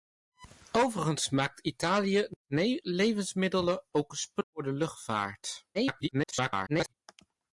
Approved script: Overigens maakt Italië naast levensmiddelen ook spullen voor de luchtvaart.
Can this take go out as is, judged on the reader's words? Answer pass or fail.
fail